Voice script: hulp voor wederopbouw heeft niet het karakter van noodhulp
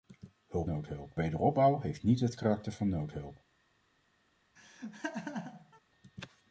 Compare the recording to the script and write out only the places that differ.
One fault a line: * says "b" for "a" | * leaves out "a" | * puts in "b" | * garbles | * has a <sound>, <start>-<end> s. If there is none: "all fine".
* says "noodhulp" for "voor"
* has a laugh, 4.6-5.8 s